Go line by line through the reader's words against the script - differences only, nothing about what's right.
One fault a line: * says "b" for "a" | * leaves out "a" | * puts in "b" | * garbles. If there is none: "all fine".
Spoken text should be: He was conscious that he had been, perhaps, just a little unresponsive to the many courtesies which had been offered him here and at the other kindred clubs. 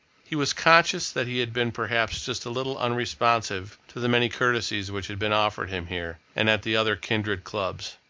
all fine